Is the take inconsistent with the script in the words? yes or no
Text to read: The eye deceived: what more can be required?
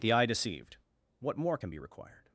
no